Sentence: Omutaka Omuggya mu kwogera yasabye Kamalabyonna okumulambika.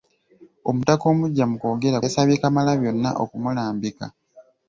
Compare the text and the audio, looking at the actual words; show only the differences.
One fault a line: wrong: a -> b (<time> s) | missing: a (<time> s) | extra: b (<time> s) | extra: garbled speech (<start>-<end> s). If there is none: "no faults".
no faults